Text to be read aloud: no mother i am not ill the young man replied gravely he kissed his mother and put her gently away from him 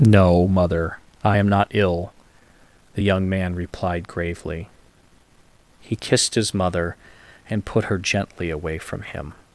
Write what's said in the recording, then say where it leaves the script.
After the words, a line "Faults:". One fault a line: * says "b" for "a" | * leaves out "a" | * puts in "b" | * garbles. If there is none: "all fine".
no mother i am not ill the young man replied gravely he kissed his mother and put her gently away from him
Faults:
all fine